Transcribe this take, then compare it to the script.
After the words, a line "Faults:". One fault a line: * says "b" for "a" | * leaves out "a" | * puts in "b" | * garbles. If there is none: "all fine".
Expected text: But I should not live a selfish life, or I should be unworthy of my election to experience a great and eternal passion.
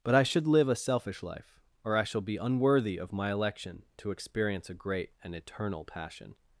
But I should live a selfish life, or I shall be unworthy of my election to experience a great and eternal passion.
Faults:
* leaves out "not"
* says "shall" for "should"